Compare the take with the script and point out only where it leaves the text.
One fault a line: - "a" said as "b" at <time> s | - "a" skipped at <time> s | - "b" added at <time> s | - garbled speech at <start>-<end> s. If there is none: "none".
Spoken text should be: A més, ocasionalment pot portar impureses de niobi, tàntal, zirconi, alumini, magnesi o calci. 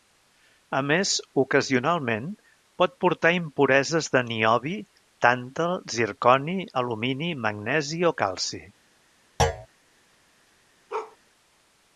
none